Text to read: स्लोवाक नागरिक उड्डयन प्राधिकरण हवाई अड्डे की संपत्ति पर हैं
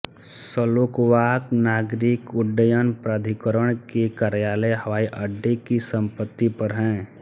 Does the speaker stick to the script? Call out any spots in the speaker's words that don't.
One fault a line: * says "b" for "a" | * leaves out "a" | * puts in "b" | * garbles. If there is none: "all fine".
* puts in "के कार्यालय"